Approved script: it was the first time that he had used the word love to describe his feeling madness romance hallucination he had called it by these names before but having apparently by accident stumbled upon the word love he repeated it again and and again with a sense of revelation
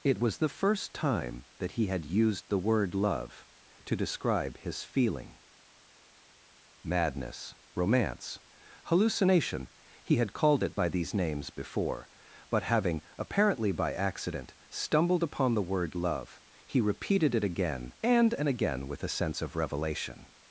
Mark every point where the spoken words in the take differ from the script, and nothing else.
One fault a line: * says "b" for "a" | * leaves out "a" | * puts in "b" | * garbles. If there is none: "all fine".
all fine